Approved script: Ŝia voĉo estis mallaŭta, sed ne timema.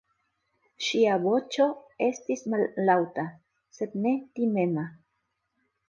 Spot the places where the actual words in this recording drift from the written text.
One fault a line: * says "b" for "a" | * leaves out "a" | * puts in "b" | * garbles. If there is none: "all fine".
all fine